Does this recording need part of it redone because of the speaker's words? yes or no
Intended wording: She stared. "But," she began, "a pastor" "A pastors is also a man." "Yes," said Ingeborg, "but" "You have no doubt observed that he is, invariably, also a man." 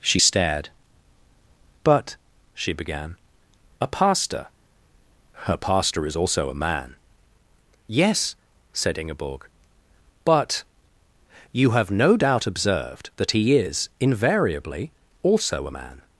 yes